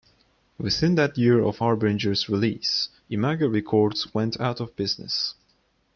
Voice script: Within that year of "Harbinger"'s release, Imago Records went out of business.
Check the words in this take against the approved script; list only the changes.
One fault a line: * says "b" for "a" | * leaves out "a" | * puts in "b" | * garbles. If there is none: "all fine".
all fine